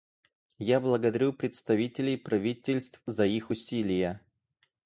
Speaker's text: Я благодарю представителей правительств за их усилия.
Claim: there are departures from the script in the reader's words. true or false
false